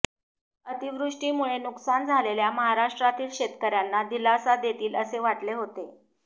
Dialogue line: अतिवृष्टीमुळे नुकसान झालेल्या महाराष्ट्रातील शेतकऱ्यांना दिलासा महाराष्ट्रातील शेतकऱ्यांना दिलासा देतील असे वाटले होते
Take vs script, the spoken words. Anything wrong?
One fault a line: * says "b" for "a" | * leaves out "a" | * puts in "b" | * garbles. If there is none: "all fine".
* leaves out "महाराष्ट्रातील शेतकऱ्यांना दिलासा"